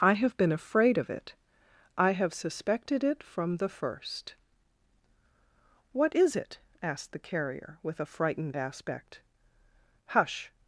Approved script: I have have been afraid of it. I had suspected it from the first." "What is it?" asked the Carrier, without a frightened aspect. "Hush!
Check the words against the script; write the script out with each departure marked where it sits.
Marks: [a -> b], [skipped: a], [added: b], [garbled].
I have [skipped: have] been afraid of it. I [had -> have] suspected it from the first." "What is it?" asked the Carrier, [without -> with] a frightened aspect. "Hush!